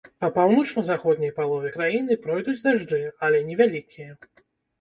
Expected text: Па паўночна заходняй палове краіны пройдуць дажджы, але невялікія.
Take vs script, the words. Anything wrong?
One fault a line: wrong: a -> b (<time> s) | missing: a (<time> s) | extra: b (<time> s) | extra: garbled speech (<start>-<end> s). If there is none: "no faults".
no faults